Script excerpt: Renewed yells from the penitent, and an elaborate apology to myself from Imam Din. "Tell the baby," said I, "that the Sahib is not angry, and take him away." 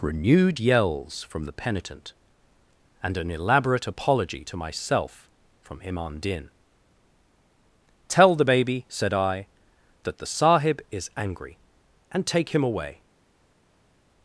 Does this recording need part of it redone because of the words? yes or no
yes